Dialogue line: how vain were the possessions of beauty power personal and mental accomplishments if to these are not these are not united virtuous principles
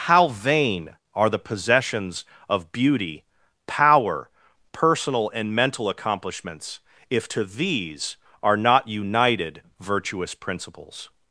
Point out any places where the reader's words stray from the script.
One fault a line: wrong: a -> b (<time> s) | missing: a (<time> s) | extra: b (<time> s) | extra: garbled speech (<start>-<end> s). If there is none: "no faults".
wrong: were -> are (1.1 s)
missing: these are not (8.9 s)